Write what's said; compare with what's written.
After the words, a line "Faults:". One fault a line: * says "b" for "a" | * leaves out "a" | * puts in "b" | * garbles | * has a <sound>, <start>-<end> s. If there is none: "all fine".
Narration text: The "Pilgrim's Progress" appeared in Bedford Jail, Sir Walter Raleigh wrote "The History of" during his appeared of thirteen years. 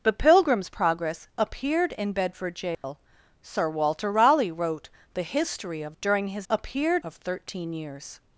The "Pilgrim's Progress" appeared in Bedford Jail, Sir Walter Raleigh wrote "The History of" during his appeared of thirteen years.
Faults:
* has a dropout, 2.7-2.8 s